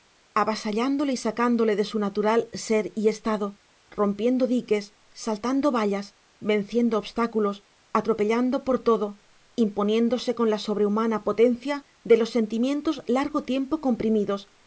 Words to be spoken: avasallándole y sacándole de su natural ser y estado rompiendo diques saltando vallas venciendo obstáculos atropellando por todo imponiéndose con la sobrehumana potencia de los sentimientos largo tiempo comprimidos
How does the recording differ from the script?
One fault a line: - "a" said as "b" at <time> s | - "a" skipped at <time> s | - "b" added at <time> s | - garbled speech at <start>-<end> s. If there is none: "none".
none